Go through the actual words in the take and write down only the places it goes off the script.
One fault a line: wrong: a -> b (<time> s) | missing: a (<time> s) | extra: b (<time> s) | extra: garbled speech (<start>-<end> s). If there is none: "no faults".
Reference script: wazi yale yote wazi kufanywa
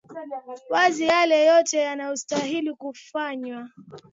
wrong: wazi -> yanayostahili (1.8 s)